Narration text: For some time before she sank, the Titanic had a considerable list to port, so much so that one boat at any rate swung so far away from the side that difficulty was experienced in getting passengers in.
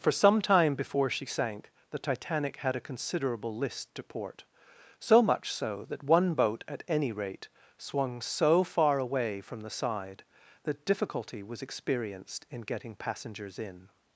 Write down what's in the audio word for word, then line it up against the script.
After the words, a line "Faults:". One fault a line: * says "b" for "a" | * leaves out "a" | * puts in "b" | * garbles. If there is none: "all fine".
For some time before she sank, the Titanic had a considerable list to port, so much so that one boat at any rate swung so far away from the side that difficulty was experienced in getting passengers in.
Faults:
all fine